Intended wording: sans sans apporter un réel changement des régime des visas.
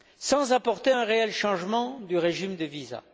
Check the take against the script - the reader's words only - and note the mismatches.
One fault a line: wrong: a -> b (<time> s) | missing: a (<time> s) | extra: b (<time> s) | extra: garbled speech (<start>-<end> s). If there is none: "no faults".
missing: sans (0.5 s)
wrong: des -> du (2.0 s)